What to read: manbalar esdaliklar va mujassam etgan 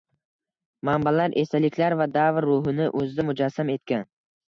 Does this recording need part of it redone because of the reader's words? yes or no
yes